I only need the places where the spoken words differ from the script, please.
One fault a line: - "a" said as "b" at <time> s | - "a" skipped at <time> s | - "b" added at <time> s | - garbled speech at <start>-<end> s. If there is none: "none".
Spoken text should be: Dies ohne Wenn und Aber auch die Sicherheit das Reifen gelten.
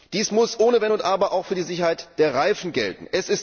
- "muss" added at 0.3 s
- "für" added at 1.4 s
- "das" said as "der" at 2.2 s